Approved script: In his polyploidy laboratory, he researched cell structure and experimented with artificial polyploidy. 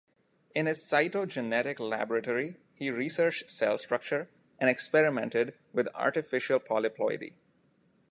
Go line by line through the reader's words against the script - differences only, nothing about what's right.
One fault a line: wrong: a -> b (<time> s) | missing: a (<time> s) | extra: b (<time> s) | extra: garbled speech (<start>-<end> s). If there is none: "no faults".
wrong: polyploidy -> cytogenetic (0.9 s)